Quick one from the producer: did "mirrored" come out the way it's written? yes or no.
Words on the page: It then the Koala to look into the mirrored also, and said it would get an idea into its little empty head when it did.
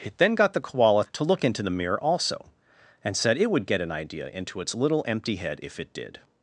no